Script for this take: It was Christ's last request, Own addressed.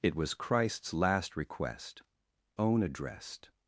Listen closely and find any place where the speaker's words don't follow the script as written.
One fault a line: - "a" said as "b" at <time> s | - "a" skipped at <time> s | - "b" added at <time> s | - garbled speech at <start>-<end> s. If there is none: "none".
none